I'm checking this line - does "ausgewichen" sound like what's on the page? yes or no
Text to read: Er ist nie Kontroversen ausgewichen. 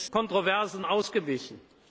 yes